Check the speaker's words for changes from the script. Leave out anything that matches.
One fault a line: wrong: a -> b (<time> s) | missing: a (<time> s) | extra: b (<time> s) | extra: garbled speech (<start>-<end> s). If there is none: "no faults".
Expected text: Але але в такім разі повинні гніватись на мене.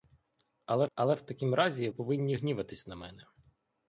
no faults